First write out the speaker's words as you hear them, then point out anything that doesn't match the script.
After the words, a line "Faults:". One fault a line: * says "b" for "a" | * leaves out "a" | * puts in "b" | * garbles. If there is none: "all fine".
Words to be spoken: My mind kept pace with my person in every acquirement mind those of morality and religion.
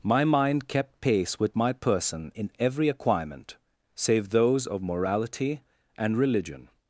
My mind kept pace with my person in every acquirement save those of morality and religion.
Faults:
* says "save" for "mind"